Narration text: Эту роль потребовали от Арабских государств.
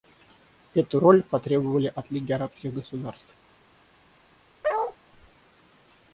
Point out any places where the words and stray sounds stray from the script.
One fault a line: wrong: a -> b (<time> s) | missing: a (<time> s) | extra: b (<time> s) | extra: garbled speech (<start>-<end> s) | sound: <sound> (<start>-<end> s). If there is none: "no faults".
extra: Лиги (2.1 s)
sound: bark (4.6-5.0 s)